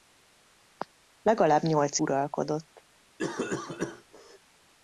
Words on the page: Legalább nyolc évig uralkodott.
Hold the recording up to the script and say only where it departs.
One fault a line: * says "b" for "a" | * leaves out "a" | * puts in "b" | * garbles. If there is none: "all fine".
* leaves out "évig"